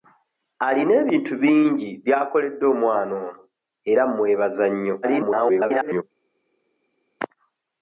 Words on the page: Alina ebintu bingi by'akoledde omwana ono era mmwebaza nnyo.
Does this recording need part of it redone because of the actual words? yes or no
yes